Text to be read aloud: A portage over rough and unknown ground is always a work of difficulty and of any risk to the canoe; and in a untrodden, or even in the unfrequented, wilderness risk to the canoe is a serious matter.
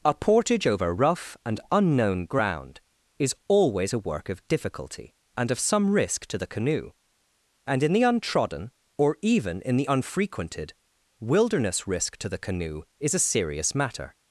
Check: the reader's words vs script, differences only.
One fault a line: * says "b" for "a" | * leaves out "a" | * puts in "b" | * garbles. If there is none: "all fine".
* says "some" for "any"
* says "the" for "a"